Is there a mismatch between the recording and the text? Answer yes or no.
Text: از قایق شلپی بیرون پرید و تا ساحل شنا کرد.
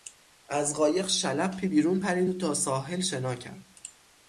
no